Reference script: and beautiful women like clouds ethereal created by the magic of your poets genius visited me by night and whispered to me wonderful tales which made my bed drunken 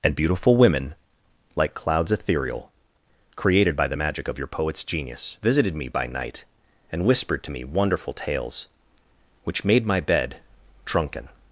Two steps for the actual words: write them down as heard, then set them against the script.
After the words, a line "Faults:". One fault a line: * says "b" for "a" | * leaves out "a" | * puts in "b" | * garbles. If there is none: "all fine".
and beautiful women like clouds ethereal created by the magic of your poets genius visited me by night and whispered to me wonderful tales which made my bed drunken
Faults:
all fine